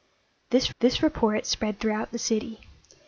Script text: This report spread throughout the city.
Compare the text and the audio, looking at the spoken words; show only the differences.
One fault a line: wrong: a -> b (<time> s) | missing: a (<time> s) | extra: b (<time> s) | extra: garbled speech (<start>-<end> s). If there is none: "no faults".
extra: this (0.8 s)